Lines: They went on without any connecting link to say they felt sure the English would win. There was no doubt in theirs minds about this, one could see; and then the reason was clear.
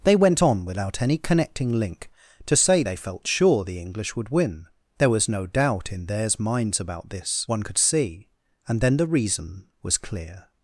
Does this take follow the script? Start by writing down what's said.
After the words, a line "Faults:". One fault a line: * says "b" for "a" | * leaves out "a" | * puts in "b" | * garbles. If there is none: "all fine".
They went on without any connecting link to say they felt sure the English would win. There was no doubt in theirs minds about this, one could see; and then the reason was clear.
Faults:
all fine